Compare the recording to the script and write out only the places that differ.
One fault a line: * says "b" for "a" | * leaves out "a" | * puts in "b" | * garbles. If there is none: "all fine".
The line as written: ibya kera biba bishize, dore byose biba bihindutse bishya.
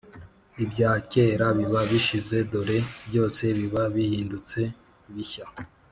all fine